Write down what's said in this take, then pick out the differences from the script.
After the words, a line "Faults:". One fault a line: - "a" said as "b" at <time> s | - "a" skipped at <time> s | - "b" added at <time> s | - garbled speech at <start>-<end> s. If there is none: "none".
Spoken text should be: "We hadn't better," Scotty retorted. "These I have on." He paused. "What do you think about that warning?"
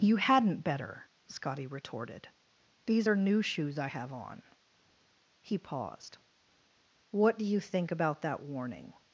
"You hadn't better," Scotty retorted. "These are new shoes I have on." He paused. "What do you think about that warning?"
Faults:
- "We" said as "You" at 0.0 s
- "are new shoes" added at 3.1 s